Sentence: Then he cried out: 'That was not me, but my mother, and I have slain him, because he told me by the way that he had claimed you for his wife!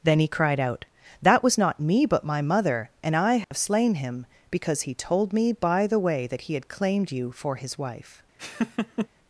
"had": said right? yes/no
yes